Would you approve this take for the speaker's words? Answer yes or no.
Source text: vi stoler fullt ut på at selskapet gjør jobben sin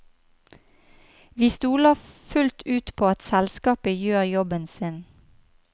yes